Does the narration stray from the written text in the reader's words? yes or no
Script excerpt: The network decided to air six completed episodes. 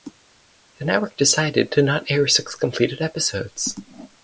yes